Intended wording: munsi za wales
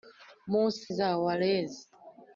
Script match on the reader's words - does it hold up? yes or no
yes